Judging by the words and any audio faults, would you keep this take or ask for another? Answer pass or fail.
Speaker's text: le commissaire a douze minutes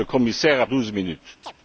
fail